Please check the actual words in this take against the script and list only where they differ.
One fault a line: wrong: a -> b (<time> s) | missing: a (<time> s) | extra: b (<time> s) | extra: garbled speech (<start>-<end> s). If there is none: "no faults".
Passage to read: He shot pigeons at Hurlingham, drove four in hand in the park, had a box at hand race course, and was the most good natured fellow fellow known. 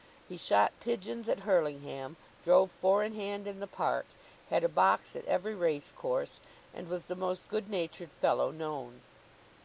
wrong: hand -> every (5.3 s)
missing: fellow (8.5 s)